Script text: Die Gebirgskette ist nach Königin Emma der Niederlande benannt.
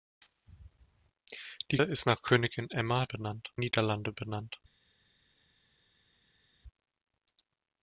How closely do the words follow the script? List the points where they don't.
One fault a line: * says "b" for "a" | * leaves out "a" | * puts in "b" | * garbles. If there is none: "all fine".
* leaves out "Gebirgskette"
* says "benannt" for "der"